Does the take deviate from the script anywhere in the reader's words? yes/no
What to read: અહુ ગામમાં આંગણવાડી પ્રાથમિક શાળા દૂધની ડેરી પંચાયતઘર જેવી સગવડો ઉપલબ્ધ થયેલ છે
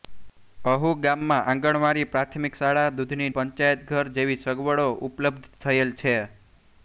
yes